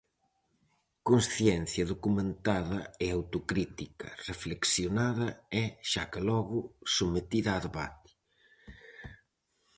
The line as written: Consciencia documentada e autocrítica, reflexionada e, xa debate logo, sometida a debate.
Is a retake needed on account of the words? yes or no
yes